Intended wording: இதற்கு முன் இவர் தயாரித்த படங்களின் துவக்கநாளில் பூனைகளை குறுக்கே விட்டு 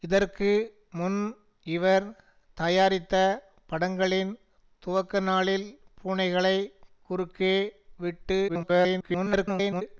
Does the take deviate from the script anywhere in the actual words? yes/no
yes